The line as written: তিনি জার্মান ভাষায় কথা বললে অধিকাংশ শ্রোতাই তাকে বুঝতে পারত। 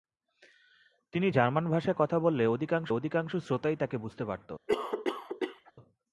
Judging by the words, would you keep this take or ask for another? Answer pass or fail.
fail